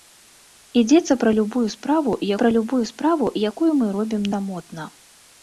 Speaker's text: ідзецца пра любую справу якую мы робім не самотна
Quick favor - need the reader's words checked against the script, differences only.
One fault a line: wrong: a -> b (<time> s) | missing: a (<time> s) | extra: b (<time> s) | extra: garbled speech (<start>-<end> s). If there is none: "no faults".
extra: пра любую справу (2.4 s)
missing: не (4.2 s)